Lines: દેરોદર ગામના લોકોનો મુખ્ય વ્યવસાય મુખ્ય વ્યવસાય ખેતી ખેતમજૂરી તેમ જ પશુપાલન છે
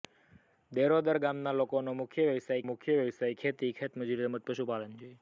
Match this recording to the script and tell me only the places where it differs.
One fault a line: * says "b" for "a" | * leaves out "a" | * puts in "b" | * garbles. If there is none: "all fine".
all fine